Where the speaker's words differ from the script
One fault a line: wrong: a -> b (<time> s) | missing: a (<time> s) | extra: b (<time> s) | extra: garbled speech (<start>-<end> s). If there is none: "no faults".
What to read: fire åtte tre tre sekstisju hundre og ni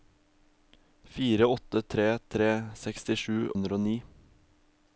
no faults